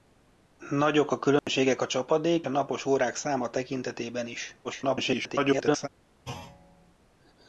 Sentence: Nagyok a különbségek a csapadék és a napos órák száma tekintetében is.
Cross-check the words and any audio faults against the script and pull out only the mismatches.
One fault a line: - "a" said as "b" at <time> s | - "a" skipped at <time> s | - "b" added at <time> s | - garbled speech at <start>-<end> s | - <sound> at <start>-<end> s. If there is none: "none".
- dropout at 1.4-1.5 s
- "és" skipped at 2.5 s
- garbled speech at 4.6-5.9 s
- thud at 6.3-6.9 s